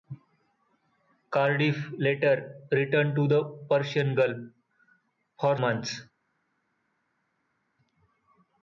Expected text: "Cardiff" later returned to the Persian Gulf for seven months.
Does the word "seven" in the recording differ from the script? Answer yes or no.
yes